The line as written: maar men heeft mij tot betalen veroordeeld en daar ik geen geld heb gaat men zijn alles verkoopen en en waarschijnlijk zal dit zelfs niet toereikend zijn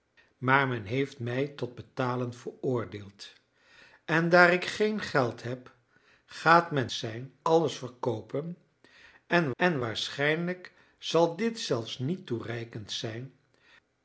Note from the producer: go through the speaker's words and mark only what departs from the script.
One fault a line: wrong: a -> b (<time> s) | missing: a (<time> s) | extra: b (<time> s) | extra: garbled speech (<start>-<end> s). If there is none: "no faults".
no faults